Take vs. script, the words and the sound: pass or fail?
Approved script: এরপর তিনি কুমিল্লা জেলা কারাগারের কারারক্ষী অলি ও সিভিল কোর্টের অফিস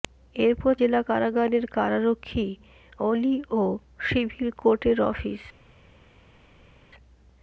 fail